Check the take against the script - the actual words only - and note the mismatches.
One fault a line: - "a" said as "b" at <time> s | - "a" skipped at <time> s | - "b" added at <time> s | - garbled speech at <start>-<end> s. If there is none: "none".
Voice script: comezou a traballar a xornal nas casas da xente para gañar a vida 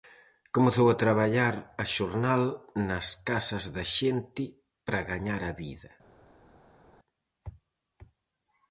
none